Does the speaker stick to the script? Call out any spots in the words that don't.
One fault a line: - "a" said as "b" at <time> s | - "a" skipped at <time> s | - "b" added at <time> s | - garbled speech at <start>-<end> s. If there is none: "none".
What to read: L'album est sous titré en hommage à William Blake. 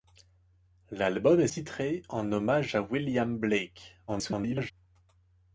- "sous" skipped at 1.5 s
- garbled speech at 4.1-4.7 s